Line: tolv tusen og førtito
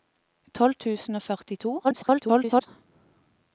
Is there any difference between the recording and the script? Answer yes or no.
yes